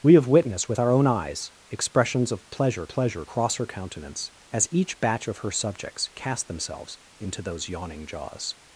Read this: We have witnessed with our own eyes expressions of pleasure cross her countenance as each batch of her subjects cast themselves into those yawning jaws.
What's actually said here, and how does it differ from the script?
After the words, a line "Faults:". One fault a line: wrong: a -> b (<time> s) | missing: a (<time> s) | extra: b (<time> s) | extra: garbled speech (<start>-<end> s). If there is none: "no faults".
We have witnessed with our own eyes expressions of pleasure pleasure cross her countenance as each batch of her subjects cast themselves into those yawning jaws.
Faults:
extra: pleasure (2.9 s)